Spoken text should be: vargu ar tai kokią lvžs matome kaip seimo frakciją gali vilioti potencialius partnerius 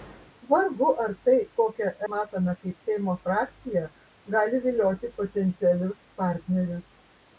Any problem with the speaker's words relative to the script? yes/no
yes